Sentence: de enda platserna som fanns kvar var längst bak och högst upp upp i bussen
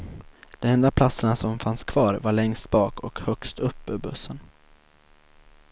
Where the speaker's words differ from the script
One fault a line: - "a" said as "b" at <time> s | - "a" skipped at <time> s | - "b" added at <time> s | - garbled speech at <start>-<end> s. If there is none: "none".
- "upp" skipped at 3.9 s